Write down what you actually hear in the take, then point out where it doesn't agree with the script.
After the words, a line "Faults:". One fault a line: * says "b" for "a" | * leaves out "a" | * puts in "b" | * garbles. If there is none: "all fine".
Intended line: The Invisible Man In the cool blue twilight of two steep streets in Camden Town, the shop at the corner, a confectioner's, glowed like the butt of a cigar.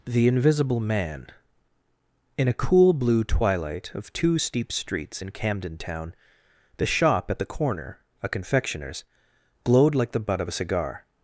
The Invisible Man In a cool blue twilight of two steep streets in Camden Town, the shop at the corner, a confectioner's, glowed like the butt of a cigar.
Faults:
* says "a" for "the"